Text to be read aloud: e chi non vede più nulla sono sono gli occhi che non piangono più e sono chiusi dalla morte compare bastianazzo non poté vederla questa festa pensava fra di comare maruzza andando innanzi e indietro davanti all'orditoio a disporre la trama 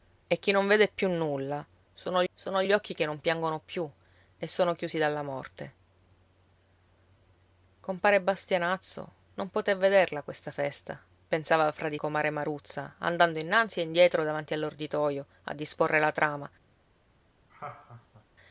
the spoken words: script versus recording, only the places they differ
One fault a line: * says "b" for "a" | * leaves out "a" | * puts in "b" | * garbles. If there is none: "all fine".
all fine